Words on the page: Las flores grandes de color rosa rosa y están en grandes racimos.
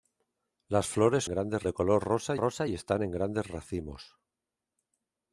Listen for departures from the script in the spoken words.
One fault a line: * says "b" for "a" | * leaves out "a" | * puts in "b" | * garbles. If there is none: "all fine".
all fine